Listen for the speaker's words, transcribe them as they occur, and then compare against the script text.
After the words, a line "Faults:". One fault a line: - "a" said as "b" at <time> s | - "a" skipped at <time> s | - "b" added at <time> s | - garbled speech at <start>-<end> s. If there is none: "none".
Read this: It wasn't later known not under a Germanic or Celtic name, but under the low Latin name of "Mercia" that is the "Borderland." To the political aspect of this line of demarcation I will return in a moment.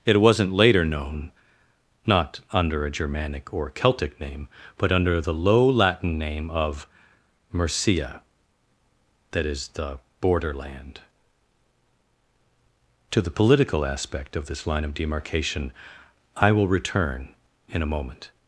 It wasn't later known not under a Germanic or Celtic name, but under the low Latin name of "Mercia" that is the "Borderland." To the political aspect of this line of demarcation I will return in a moment.
Faults:
none